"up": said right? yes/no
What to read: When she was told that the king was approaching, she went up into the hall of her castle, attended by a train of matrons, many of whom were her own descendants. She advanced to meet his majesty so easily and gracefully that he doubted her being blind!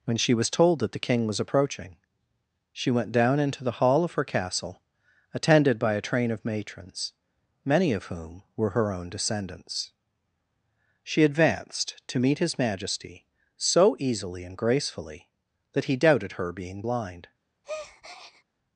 no